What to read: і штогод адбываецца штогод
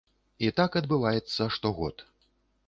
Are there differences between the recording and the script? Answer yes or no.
yes